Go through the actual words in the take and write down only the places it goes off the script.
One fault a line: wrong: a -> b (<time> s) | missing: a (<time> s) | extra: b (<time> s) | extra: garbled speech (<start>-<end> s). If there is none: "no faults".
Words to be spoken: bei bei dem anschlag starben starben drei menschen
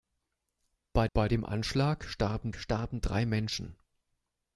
no faults